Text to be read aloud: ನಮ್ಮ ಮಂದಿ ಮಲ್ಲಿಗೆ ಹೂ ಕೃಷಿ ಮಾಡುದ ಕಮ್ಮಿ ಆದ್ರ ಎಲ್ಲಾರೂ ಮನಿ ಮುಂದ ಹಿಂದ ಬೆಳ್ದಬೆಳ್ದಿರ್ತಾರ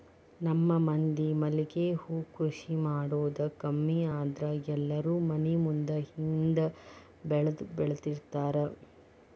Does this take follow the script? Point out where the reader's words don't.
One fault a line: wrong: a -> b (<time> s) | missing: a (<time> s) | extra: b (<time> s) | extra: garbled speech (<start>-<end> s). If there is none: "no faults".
no faults